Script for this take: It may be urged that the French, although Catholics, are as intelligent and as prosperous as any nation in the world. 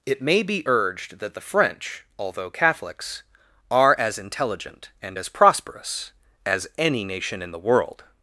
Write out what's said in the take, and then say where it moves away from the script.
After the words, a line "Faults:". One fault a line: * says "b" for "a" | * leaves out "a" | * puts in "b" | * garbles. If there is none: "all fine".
It may be urged that the French, although Catholics, are as intelligent and as prosperous as any nation in the world.
Faults:
all fine